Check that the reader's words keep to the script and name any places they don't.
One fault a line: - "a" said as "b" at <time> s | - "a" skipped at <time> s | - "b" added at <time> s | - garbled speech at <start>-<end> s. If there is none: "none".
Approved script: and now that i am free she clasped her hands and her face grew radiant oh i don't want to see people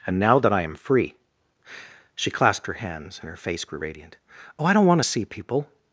none